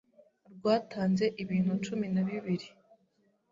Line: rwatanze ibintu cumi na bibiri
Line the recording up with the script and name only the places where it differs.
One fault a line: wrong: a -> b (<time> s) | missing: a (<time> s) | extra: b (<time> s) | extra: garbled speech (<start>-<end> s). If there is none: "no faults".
no faults